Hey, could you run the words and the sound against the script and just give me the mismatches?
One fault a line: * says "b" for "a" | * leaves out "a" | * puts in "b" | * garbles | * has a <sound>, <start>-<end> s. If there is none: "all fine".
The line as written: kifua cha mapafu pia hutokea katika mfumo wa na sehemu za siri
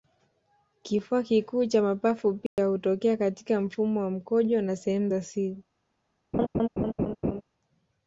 * puts in "kikuu"
* has a dropout, 2.5-2.6 s
* puts in "mkojo"
* has a laugh, 6.3-7.4 s